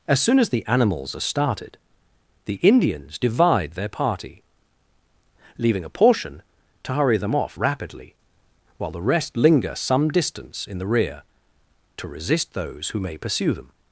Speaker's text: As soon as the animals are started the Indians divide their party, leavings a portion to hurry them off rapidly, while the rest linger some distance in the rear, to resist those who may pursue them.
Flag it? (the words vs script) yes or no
yes